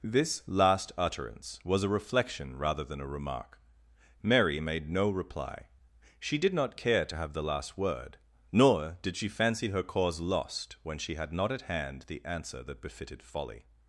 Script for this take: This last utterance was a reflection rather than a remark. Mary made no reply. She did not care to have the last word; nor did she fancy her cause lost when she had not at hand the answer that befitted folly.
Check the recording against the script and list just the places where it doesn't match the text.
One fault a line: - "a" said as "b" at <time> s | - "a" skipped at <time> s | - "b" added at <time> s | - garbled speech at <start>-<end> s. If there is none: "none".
none